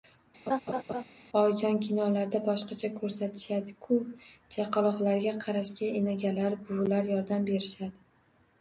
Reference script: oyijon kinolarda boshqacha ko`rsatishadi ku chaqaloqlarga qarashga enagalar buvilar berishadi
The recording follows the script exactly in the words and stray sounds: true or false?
false